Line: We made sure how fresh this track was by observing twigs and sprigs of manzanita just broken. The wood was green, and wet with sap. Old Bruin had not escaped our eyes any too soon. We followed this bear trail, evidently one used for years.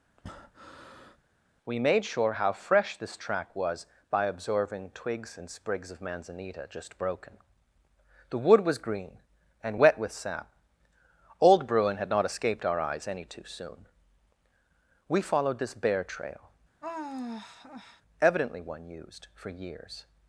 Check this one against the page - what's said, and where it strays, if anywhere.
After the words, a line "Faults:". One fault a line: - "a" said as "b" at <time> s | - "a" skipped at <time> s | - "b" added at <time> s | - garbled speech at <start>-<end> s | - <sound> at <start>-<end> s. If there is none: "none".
We made sure how fresh this track was by observing twigs and sprigs of manzanita just broken. The wood was green, and wet with sap. Old Bruin had not escaped our eyes any too soon. We followed this bear trail, evidently one used for years.
Faults:
- breath at 0.2-1.2 s
- sigh at 16.8-18.0 s